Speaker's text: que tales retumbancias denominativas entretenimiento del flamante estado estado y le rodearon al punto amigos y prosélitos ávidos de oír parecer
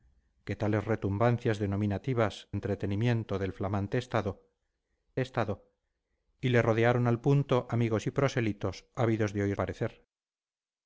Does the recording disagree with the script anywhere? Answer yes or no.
no